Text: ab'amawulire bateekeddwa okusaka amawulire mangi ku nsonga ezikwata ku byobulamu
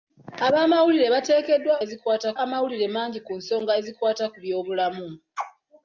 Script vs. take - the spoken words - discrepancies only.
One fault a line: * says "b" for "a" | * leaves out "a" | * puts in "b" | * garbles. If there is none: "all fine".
* says "ezikwata" for "okusaka"